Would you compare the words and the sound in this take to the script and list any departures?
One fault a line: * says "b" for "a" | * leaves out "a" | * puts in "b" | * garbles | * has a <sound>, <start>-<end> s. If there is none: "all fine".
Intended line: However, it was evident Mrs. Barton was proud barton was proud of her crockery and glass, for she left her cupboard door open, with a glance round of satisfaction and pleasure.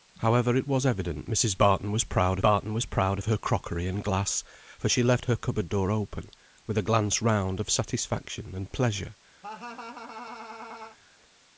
* has a laugh, 9.4-11.0 s